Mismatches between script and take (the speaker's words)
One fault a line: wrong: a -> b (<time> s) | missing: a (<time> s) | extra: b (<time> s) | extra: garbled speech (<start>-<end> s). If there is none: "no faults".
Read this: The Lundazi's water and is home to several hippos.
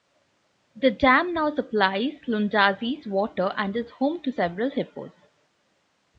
extra: dam now supplies (0.9 s)